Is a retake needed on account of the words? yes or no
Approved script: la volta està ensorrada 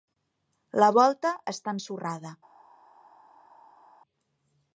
no